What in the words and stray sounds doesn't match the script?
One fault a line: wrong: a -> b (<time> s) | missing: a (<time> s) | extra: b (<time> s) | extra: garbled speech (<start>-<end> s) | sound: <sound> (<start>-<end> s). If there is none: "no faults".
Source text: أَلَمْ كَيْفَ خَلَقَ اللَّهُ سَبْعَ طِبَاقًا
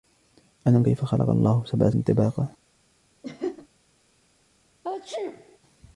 sound: laugh (3.2-3.7 s)
sound: sneeze (4.8-5.6 s)